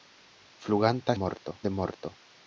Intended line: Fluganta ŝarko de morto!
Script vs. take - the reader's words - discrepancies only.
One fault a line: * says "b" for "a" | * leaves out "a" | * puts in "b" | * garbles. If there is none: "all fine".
* says "morto" for "ŝarko"